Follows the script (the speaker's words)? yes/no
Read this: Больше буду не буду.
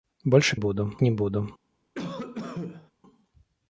yes